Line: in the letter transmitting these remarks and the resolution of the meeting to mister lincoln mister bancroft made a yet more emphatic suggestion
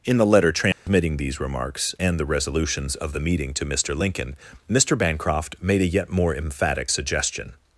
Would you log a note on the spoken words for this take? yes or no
yes